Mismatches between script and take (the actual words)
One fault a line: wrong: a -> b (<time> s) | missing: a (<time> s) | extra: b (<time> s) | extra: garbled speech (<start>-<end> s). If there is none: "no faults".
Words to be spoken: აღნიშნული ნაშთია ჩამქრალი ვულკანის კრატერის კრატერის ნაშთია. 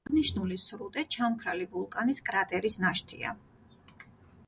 wrong: ნაშთია -> სრუტე (0.6 s)
missing: კრატერის (2.8 s)